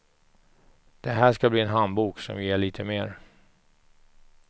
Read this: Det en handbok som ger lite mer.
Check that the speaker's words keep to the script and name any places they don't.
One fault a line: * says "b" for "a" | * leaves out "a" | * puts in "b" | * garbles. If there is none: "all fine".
* puts in "här ska bli"